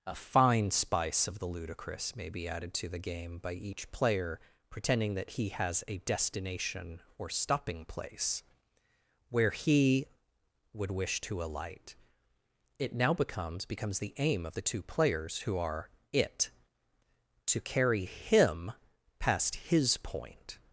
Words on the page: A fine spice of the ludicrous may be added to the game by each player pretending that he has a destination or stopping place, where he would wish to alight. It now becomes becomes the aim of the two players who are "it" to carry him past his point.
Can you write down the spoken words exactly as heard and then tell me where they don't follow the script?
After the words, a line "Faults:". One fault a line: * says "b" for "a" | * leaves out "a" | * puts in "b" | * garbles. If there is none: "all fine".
A fine spice of the ludicrous may be added to the game by each player pretending that he has a destination or stopping place, where he would wish to alight. It now becomes becomes the aim of the two players who are "it" to carry him past his point.
Faults:
all fine